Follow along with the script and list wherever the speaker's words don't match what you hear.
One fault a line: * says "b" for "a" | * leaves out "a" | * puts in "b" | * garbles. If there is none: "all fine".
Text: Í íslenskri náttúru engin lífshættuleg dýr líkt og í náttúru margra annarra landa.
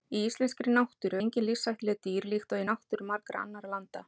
all fine